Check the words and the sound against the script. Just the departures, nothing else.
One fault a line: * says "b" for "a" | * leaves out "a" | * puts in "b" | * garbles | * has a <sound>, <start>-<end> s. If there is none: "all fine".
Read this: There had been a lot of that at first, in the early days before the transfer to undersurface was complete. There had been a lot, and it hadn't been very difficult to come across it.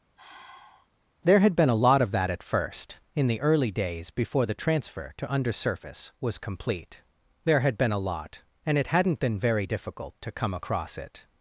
* has a sigh, 0.2-0.9 s